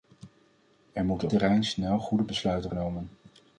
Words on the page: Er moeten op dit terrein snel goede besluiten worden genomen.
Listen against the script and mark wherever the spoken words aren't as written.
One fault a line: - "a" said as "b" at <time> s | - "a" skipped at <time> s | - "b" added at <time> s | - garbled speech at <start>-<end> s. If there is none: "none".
- "op dit" skipped at 1.3 s
- "worden" skipped at 2.7 s